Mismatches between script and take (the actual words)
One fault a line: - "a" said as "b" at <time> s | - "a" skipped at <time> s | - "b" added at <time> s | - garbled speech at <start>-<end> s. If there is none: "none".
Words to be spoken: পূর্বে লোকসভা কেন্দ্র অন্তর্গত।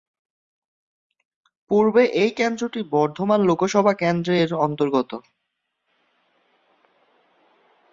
- "এই কেন্দ্রটি বর্ধমান" added at 2.2 s
- "এর" added at 4.4 s